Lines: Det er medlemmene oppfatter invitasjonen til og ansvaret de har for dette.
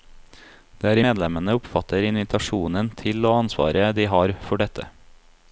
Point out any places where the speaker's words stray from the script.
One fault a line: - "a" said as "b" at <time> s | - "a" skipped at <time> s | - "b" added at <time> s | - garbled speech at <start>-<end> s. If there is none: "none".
none